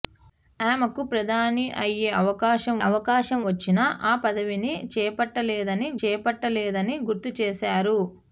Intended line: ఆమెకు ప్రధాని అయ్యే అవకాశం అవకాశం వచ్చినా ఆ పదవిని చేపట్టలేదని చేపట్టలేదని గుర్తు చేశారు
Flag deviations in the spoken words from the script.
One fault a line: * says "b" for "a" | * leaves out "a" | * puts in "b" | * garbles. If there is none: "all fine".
all fine